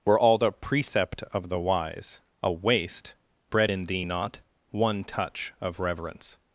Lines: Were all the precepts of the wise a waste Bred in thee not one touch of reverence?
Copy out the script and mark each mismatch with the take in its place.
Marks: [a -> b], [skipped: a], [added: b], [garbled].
Were all the [precepts -> precept] of the wise a waste Bred in thee not one touch of reverence?